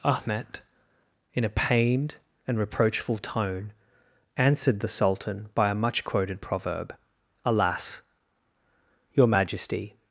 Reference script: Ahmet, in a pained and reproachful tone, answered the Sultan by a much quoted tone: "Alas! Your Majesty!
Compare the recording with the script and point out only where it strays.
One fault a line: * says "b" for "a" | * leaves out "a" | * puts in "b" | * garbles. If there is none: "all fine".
* says "proverb" for "tone"